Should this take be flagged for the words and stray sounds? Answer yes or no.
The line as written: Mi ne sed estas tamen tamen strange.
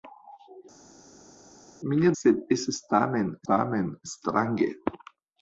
no